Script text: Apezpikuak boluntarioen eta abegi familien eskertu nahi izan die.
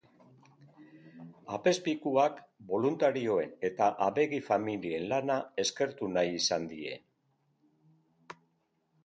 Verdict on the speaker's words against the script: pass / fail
fail